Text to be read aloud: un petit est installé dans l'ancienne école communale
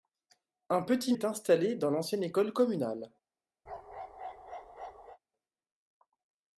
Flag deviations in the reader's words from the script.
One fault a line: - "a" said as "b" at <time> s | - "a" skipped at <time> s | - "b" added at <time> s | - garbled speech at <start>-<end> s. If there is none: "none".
none